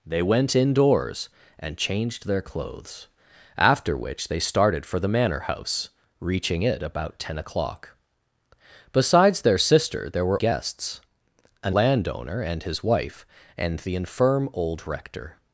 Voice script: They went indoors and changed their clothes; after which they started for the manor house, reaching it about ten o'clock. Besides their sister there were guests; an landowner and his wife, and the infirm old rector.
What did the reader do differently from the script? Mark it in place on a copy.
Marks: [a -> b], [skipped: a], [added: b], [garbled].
They went indoors and changed their clothes; after which they started for the manor house, reaching it about ten o'clock. Besides their sister there were guests; an landowner and his wife, and the infirm old rector.